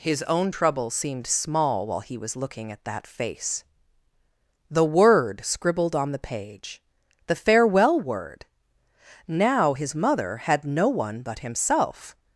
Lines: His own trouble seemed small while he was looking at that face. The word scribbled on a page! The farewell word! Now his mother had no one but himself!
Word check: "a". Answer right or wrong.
wrong